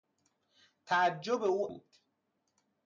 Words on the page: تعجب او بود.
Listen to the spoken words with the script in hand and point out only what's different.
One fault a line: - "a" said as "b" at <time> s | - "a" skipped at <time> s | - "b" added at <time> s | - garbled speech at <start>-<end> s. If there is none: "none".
none